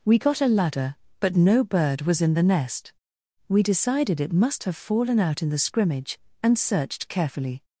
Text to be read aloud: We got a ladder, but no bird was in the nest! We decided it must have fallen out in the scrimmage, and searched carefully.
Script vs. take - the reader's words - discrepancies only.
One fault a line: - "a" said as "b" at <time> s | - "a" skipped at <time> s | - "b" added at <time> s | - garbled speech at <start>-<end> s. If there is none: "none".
none